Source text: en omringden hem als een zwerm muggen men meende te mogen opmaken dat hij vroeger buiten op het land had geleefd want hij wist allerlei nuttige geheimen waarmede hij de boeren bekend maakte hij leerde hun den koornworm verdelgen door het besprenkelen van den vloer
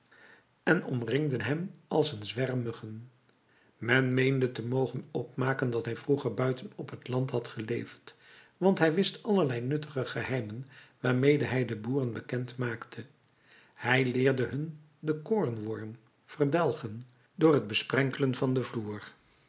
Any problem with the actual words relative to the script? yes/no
no